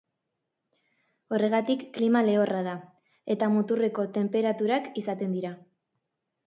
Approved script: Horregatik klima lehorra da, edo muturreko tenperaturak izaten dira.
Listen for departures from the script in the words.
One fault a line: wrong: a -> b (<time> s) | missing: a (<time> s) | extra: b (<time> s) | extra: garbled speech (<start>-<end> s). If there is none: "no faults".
wrong: edo -> eta (3.4 s)